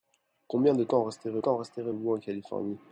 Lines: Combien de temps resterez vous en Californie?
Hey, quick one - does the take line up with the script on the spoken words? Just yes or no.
no